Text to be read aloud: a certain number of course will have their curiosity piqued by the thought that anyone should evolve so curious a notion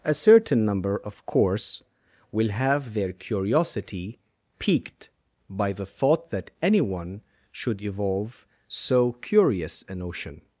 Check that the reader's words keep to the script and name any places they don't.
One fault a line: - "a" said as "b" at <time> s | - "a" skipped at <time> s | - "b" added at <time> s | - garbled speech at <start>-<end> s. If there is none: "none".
none